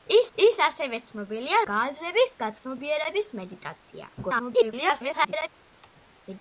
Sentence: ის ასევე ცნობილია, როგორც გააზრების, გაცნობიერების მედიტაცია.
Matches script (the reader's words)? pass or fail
fail